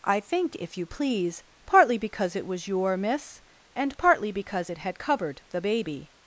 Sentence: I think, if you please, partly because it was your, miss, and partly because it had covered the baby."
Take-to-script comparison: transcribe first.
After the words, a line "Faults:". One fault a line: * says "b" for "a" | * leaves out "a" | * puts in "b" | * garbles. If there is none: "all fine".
I think, if you please, partly because it was your, miss, and partly because it had covered the baby."
Faults:
all fine